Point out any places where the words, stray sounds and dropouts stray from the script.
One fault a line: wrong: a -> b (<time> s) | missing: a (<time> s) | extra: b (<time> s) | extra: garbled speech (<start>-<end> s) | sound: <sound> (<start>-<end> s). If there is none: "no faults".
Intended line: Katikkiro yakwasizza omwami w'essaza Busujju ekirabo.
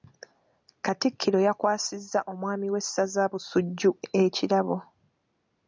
no faults